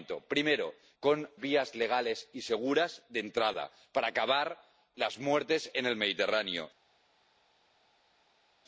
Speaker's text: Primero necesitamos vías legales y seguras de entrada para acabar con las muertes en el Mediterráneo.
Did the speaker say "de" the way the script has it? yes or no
yes